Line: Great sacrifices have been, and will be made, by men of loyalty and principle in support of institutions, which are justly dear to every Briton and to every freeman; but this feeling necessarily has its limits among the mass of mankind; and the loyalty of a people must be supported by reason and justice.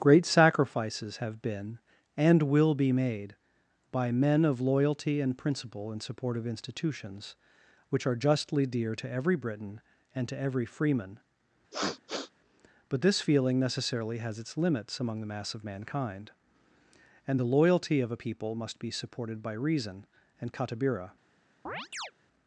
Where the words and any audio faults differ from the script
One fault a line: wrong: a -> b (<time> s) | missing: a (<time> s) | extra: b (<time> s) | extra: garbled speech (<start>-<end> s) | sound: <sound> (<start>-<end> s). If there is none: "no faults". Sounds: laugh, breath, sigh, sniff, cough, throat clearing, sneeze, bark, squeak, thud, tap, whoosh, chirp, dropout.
sound: sniff (11.7-12.3 s)
wrong: justice -> katabira (20.5 s)
sound: chirp (21.7-22.1 s)